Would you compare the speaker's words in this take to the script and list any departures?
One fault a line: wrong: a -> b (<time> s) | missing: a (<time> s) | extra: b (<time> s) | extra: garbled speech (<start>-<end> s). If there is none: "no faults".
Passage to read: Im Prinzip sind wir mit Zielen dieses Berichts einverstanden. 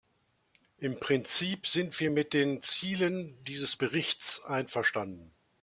extra: den (2.3 s)